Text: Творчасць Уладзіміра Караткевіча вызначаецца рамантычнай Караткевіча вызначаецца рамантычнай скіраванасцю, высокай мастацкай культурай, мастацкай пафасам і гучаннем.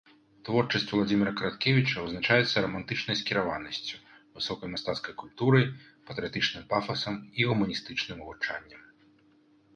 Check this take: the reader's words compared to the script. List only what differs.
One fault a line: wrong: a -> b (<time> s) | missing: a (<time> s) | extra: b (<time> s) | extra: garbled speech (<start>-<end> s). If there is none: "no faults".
missing: Караткевіча вызначаецца рамантычнай (3.2 s)
wrong: мастацкай -> патрыятычным (6.1 s)
extra: гуманістычным (7.5 s)